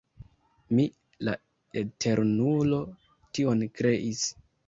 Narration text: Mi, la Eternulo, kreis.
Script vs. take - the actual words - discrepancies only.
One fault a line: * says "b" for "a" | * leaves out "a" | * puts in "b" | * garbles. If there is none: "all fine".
* puts in "tion"